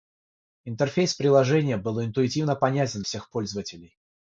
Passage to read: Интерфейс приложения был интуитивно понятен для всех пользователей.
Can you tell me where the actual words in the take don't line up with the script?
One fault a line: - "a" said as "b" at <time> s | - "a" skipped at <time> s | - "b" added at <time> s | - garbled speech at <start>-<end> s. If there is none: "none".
- "для" skipped at 3.0 s